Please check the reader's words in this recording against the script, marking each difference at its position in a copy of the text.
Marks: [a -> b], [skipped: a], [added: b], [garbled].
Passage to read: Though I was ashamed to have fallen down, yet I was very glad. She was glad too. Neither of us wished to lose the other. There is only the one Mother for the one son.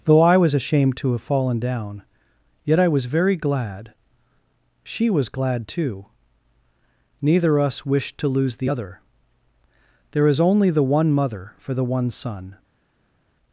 Though I was ashamed to have fallen down, yet I was very glad. She was glad too. Neither [skipped: of] us wished to lose the other. There is only the one Mother for the one son.